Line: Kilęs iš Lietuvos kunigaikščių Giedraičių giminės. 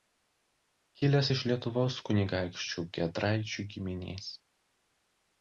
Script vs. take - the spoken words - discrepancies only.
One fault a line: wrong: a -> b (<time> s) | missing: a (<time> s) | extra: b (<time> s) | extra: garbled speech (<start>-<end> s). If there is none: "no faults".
no faults